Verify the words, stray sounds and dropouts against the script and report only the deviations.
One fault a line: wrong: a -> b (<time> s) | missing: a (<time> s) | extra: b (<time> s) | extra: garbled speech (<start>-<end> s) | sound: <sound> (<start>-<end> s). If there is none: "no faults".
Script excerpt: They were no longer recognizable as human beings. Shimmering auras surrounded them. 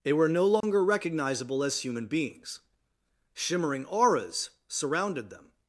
sound: dropout (0.6-0.6 s)